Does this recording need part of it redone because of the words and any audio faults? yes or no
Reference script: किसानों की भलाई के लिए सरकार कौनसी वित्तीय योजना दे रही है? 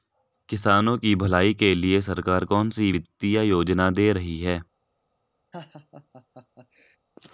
yes